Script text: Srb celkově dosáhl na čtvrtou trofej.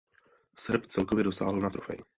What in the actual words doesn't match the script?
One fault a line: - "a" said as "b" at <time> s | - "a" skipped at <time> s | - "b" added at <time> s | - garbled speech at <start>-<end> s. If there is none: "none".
- "čtvrtou" skipped at 1.7 s